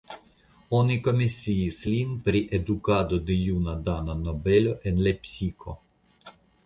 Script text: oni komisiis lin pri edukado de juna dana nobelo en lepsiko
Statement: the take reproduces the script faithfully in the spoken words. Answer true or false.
true